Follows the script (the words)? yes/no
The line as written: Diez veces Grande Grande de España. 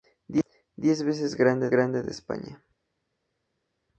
yes